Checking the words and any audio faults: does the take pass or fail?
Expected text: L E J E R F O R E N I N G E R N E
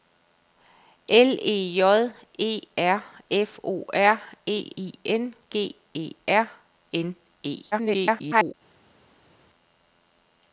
fail